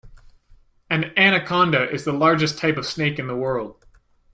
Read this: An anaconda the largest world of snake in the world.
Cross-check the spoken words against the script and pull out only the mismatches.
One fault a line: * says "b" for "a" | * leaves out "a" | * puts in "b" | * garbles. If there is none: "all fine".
* puts in "is"
* says "type" for "world"